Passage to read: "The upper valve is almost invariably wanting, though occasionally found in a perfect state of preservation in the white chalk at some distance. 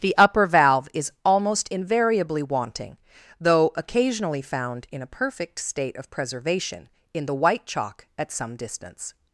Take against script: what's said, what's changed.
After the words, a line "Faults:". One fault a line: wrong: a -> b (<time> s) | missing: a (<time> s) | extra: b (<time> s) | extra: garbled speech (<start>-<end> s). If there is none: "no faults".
"The upper valve is almost invariably wanting, though occasionally found in a perfect state of preservation in the white chalk at some distance.
Faults:
no faults